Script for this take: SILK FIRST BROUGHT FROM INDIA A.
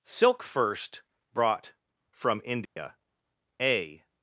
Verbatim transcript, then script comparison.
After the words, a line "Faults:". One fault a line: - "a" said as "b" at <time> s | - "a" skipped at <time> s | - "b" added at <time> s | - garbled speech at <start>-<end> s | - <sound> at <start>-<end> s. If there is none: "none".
SILK FIRST BROUGHT FROM INDIA A.
Faults:
- dropout at 2.6-2.8 s